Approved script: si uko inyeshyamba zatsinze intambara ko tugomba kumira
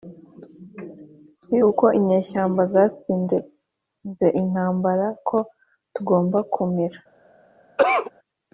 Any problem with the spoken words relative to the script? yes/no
no